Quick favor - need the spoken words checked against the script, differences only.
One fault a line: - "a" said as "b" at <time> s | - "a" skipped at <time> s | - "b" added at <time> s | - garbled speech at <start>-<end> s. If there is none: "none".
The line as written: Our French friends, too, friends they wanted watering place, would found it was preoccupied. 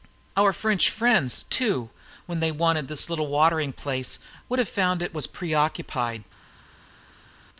- "friends" said as "when" at 2.2 s
- "this little" added at 2.9 s
- "have" added at 4.6 s